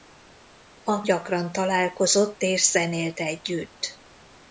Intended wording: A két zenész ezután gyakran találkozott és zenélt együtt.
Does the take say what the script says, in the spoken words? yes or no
no